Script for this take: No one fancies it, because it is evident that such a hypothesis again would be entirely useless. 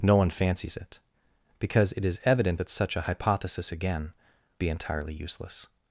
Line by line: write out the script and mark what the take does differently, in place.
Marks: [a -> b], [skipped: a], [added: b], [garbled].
No one fancies it, because it is evident that such a hypothesis again [skipped: would] be entirely useless.